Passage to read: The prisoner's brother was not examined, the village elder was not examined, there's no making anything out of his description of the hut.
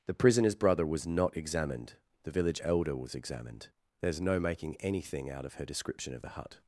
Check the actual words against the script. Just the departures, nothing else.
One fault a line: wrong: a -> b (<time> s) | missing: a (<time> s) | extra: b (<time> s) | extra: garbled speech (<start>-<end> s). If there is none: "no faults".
missing: not (3.1 s)
wrong: his -> her (5.5 s)